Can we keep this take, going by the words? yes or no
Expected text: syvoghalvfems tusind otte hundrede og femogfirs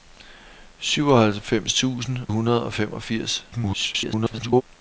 no